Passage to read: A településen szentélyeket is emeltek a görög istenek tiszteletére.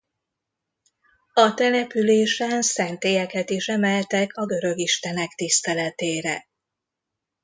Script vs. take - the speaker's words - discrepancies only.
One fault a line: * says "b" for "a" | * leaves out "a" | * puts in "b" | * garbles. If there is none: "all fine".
all fine